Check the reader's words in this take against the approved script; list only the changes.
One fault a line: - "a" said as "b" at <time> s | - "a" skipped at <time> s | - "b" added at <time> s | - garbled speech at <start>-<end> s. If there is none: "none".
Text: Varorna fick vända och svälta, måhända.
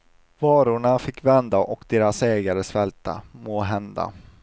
- "deras ägare" added at 1.9 s